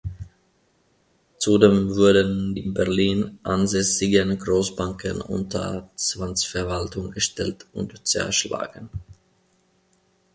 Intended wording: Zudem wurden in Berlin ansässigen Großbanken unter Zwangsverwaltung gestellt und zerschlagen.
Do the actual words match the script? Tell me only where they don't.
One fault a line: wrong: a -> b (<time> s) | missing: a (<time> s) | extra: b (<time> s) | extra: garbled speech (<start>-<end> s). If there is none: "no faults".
no faults